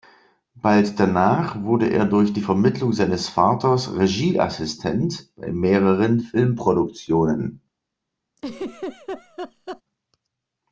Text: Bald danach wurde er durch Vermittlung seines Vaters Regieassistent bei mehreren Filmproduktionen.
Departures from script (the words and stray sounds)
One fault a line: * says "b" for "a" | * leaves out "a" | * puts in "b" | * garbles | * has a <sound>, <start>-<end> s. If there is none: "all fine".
* puts in "die"
* has a laugh, 8.4-9.8 s